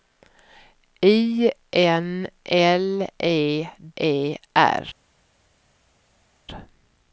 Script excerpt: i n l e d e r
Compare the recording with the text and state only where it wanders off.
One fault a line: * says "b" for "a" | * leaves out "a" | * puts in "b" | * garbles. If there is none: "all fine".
* leaves out "d"